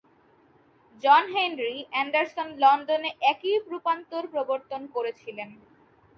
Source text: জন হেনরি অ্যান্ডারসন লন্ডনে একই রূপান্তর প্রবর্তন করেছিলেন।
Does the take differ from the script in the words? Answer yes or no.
no